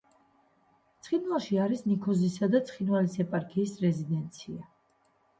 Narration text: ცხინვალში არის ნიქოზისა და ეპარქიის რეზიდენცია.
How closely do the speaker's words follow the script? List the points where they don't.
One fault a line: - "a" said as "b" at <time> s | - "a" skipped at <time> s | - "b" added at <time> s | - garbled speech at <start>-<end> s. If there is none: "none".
- "ცხინვალის" added at 2.7 s